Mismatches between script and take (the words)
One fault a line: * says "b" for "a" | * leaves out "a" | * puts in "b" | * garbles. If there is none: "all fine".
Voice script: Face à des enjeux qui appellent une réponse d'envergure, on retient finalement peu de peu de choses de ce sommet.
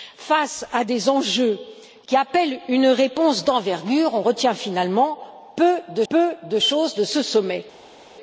all fine